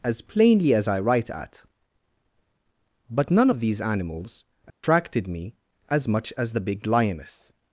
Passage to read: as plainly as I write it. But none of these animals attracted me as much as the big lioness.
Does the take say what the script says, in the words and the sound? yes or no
no